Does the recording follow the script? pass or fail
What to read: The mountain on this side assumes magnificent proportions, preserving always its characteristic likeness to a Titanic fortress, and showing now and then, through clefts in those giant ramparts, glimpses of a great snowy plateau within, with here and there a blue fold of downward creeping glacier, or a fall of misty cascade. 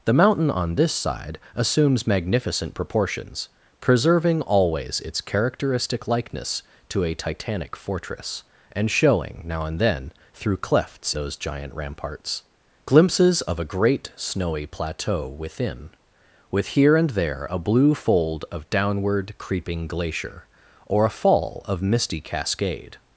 fail